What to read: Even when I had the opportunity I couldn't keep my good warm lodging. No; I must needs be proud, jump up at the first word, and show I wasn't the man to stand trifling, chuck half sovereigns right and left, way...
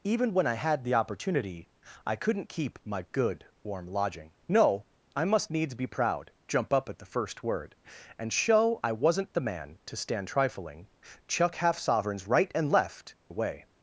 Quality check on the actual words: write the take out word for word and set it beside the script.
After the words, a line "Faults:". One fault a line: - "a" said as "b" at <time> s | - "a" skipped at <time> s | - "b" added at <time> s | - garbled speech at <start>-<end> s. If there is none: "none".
Even when I had the opportunity I couldn't keep my good warm lodging. No; I must needs be proud, jump up at the first word, and show I wasn't the man to stand trifling, chuck half sovereigns right and left, way...
Faults:
none